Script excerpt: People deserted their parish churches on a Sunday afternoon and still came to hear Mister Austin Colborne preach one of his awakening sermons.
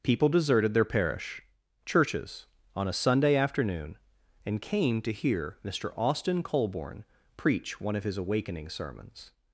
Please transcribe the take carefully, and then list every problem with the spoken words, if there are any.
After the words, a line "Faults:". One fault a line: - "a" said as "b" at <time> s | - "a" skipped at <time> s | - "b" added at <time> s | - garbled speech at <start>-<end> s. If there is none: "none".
People deserted their parish churches on a Sunday afternoon and came to hear Mister Austin Colborne preach one of his awakening sermons.
Faults:
- "still" skipped at 4.6 s